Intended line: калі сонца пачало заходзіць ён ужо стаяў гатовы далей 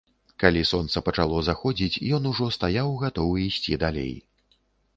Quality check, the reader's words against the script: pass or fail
fail